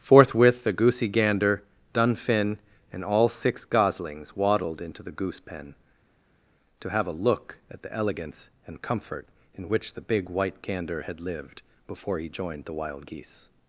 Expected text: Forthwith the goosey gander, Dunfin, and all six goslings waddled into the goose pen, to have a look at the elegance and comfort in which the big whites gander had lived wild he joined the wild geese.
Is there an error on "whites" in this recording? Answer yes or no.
yes